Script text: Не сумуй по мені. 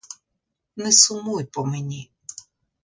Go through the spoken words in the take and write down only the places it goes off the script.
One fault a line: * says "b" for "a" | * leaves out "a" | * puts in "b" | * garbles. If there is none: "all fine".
all fine